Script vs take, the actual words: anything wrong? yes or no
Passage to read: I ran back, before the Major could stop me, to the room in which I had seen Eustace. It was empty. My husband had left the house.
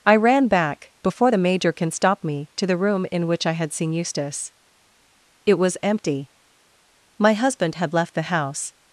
yes